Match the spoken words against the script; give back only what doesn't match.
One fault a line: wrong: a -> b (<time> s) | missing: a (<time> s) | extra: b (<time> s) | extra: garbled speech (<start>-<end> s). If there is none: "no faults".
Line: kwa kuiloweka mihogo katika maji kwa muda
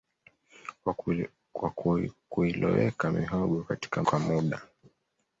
missing: maji (4.0 s)